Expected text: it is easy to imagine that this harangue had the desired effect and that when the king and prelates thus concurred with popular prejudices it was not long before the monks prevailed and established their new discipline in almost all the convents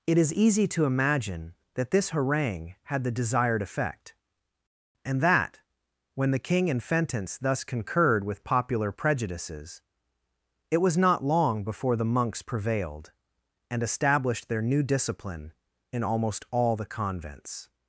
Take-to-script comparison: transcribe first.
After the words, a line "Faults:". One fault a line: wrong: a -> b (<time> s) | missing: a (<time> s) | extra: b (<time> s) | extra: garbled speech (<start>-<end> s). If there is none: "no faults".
it is easy to imagine that this harangue had the desired effect and that when the king and fentence thus concurred with popular prejudices it was not long before the monks prevailed and established their new discipline in almost all the convents
Faults:
wrong: prelates -> fentence (6.8 s)